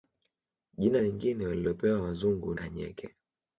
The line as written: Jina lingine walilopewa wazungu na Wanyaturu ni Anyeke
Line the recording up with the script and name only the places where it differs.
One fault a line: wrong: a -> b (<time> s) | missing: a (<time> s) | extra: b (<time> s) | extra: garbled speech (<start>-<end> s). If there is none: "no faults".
missing: na Wanyaturu ni (2.5 s)